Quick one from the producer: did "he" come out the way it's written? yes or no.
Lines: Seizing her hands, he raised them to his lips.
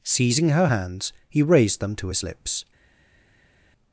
yes